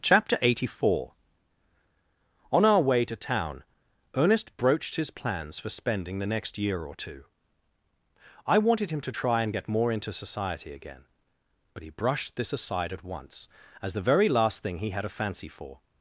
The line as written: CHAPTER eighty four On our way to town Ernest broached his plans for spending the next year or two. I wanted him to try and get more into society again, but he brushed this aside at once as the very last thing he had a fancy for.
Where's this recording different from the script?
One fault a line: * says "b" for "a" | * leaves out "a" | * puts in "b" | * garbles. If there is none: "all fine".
all fine